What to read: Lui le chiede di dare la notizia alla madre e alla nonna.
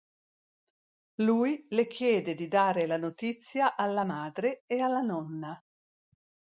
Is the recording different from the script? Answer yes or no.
no